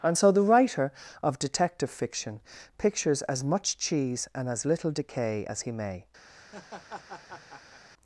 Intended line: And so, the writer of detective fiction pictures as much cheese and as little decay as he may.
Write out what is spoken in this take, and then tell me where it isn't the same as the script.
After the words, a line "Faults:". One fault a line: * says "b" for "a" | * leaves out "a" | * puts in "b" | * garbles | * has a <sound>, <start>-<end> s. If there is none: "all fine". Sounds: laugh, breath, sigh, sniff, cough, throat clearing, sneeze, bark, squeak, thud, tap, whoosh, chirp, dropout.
And so, the writer of detective fiction pictures as much cheese and as little decay as he may.
Faults:
* has a laugh, 6.3-7.8 s